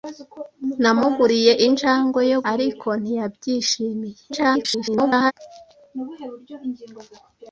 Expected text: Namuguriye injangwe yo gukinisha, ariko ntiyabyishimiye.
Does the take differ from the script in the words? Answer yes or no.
yes